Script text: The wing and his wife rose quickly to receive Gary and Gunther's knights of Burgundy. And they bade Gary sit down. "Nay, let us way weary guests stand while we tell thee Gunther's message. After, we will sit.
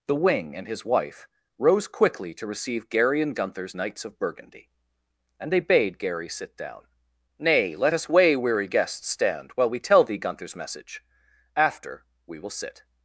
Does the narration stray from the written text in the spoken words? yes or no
no